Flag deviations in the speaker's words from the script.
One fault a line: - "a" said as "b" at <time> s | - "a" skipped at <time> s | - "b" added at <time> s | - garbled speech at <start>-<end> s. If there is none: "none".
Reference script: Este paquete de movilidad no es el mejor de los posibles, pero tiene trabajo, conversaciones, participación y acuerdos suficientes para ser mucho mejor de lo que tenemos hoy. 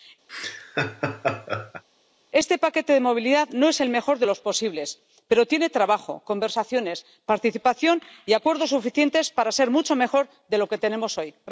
none